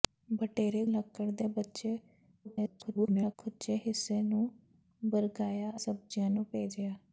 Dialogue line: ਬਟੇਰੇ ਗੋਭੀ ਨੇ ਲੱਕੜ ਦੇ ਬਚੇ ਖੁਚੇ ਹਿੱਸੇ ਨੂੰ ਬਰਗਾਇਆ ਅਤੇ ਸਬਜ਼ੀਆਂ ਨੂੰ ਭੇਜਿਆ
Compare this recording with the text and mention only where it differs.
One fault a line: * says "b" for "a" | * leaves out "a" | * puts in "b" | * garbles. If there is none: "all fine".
* leaves out "ਗੋਭੀ ਨੇ"
* garbles
* leaves out "ਅਤੇ"